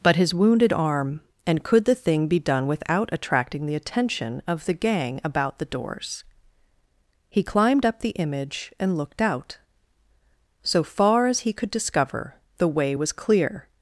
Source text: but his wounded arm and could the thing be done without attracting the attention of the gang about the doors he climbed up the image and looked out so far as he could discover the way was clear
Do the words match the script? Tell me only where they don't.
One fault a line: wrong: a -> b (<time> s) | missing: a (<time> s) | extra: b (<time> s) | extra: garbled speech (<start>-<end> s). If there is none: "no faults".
no faults